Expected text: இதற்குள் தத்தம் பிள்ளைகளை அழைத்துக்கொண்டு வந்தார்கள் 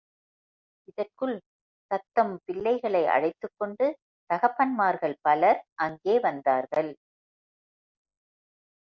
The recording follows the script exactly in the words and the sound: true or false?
false